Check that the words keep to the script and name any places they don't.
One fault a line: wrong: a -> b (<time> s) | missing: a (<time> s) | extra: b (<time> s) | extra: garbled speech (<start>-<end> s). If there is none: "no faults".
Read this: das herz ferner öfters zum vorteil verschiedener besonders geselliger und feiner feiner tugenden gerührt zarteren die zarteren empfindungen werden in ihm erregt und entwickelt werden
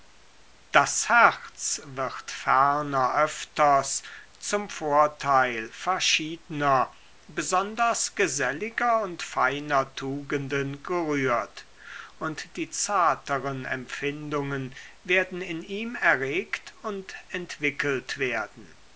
extra: wird (1.8 s)
missing: feiner (9.9 s)
wrong: zarteren -> und (12.2 s)